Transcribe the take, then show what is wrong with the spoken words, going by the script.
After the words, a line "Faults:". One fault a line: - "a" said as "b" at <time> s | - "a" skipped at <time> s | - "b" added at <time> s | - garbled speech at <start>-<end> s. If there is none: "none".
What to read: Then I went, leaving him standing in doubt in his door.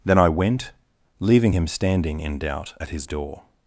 Then I went, leaving him standing in doubt at his door.
Faults:
- "in" said as "at" at 2.8 s